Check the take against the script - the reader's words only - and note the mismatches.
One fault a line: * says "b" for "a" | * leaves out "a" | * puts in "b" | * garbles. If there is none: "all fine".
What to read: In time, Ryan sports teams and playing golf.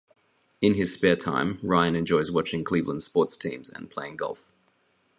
* puts in "his spare"
* puts in "enjoys watching Cleveland"